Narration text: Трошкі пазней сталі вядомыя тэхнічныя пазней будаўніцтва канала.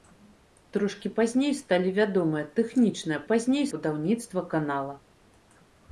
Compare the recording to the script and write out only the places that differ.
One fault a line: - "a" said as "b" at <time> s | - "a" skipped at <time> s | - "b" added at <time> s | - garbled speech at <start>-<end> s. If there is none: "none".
none